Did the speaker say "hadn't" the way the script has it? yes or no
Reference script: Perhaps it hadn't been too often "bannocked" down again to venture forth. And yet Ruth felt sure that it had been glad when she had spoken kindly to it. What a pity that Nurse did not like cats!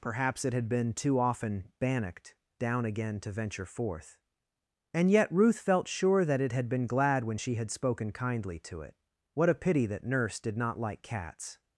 no